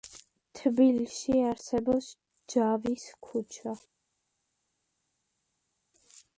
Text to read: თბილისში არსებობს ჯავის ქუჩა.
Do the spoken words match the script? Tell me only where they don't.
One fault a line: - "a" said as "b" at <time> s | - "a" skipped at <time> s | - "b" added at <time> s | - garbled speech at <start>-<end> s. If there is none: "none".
none